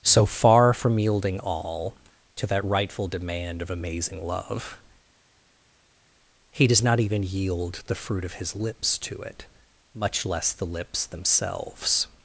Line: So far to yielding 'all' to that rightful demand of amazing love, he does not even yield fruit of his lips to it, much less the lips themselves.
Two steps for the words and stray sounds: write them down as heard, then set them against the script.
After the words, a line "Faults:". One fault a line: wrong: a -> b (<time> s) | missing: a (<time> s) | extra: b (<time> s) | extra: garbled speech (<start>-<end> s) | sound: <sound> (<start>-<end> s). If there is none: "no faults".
So far from yielding 'all' to that rightful demand of amazing love, he does not even yield the fruit of his lips to it, much less the lips themselves.
Faults:
wrong: to -> from (0.7 s)
extra: the (7.9 s)